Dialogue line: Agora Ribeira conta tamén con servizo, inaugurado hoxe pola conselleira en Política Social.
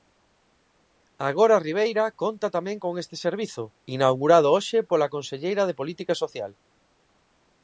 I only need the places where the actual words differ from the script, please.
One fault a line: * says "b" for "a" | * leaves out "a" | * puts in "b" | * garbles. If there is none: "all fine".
* puts in "este"
* says "de" for "en"